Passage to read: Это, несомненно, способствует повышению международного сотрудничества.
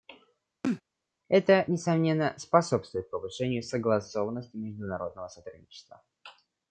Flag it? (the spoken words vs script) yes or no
yes